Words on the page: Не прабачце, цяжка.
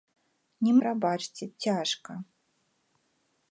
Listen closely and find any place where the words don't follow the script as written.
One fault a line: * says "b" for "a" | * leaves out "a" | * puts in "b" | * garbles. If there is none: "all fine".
all fine